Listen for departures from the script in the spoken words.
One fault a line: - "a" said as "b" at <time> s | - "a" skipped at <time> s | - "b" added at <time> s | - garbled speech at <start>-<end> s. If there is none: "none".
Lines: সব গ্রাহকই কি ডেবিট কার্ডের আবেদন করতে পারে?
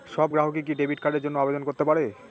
- "জন্য" added at 1.2 s